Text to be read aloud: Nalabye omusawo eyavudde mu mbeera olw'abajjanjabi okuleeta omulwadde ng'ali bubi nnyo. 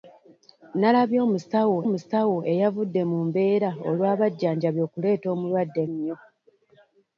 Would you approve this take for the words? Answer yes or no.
no